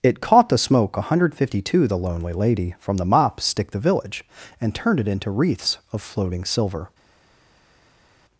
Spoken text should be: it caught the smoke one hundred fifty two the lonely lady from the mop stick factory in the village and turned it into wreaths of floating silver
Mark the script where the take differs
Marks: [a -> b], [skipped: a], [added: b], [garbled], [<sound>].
it caught the smoke one hundred fifty two the lonely lady from the mop stick [skipped: factory in] the village and turned it into wreaths of floating silver